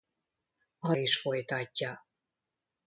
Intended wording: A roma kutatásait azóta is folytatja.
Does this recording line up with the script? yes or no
no